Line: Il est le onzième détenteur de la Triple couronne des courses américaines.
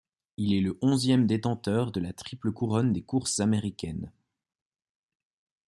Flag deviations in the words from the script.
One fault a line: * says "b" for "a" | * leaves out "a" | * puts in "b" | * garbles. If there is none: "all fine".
all fine